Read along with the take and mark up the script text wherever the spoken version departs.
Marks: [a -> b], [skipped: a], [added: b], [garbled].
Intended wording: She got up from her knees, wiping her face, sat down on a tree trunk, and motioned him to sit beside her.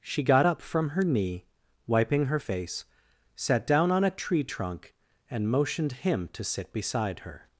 She got up from her [knees, -> knee] wiping her face, sat down on a tree trunk, and motioned him to sit beside her.